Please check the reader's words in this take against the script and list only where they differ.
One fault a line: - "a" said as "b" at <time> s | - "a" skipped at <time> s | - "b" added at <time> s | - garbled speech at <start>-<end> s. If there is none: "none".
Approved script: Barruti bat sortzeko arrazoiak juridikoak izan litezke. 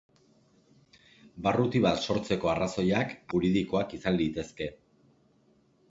none